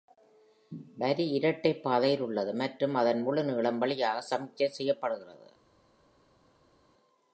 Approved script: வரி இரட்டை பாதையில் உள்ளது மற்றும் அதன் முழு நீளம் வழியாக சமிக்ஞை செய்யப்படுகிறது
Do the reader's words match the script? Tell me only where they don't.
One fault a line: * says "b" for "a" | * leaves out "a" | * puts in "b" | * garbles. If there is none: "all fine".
all fine